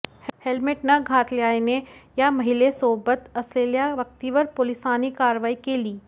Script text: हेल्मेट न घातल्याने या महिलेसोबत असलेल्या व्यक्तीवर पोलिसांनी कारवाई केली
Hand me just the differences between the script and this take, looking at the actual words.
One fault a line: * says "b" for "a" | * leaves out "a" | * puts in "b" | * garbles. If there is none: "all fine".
all fine